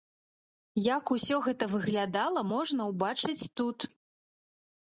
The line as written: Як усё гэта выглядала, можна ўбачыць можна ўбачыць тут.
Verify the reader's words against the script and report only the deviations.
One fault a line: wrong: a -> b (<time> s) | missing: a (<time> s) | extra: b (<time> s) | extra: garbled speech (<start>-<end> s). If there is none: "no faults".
missing: можна ўбачыць (3.5 s)